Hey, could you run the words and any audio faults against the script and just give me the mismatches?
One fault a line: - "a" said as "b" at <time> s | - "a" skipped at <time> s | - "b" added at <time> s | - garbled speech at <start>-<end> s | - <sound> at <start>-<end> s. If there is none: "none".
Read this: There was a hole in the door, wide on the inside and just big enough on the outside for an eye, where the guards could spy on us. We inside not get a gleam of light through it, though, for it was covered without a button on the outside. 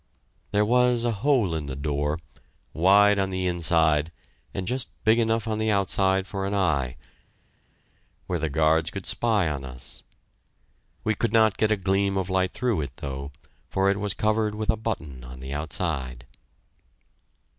- "inside" said as "could" at 11.1 s
- "without" said as "with" at 14.5 s